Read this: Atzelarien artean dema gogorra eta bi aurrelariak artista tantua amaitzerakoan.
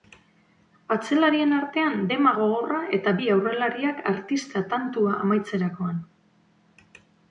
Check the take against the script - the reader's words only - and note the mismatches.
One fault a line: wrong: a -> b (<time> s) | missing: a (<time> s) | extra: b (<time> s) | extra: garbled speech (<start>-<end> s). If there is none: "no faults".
no faults